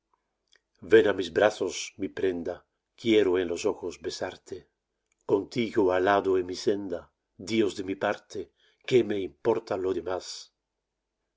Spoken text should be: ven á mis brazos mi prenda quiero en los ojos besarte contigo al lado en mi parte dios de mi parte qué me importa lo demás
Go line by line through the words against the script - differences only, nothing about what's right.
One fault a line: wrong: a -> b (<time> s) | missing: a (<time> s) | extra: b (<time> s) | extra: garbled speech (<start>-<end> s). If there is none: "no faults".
wrong: parte -> senda (6.7 s)